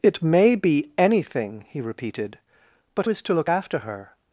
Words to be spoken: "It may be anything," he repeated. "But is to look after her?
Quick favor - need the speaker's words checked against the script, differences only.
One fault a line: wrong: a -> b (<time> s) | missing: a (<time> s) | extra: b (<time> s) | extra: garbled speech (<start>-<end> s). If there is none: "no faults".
no faults